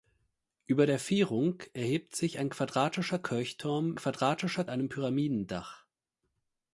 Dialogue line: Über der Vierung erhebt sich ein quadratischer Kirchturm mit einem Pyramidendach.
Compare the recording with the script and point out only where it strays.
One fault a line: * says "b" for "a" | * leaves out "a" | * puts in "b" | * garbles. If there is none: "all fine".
* says "quadratischer" for "mit"